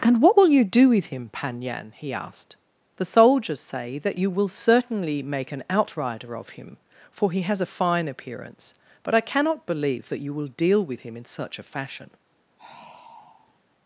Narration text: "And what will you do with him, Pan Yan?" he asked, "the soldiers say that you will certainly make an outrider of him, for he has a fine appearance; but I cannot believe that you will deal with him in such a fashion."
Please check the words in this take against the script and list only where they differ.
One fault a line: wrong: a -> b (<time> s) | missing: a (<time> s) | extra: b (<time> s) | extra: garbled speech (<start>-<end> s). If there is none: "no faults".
no faults